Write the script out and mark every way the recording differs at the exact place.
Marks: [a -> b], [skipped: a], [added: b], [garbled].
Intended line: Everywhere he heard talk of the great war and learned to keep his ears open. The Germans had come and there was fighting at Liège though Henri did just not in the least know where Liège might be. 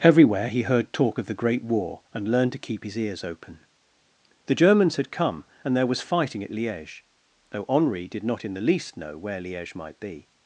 Everywhere he heard talk of the great war and learned to keep his ears open. The Germans had come and there was fighting at Liège though Henri did [skipped: just] not in the least know where Liège might be.